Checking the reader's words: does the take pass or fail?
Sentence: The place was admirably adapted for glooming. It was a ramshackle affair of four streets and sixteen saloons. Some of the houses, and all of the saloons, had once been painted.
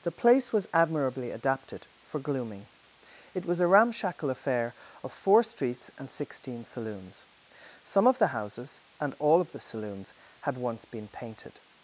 pass